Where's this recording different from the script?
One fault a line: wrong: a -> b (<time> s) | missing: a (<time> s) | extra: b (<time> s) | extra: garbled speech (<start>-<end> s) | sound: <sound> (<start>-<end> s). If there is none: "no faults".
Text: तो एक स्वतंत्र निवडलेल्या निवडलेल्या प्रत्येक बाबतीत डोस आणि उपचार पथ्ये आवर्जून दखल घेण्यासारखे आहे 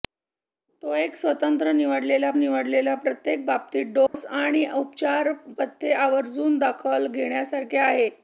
sound: dropout (4.1-4.1 s)